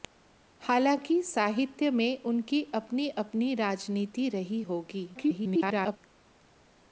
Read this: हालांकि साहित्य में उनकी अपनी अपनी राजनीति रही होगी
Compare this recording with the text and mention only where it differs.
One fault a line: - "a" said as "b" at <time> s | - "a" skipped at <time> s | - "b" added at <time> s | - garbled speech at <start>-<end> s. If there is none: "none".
- garbled speech at 5.1-6.0 s